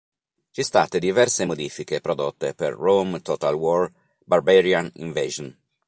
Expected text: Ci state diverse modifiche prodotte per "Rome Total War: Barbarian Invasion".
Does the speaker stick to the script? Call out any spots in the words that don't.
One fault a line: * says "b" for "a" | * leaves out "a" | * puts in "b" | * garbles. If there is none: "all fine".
all fine